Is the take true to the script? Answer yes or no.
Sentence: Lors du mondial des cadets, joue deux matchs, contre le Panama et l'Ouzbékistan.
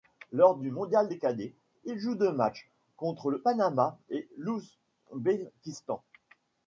no